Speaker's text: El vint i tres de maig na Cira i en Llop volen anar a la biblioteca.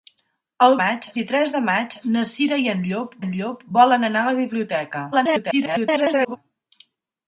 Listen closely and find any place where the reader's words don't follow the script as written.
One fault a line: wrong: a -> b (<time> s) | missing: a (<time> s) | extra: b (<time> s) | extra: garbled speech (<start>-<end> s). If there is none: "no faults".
wrong: vint -> maig (0.8 s)
extra: en Llop (3.2 s)
extra: garbled speech (5.1-6.4 s)